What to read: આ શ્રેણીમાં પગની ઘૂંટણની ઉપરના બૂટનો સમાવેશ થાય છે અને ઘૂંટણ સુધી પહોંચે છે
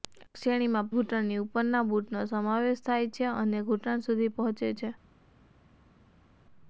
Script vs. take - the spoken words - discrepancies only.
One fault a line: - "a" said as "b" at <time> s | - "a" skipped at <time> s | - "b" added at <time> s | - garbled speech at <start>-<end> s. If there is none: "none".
- "પગની" skipped at 0.9 s